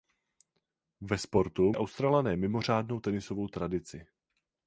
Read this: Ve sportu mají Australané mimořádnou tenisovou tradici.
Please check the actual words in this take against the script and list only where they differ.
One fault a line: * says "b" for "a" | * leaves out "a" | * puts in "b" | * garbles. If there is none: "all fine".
* leaves out "mají"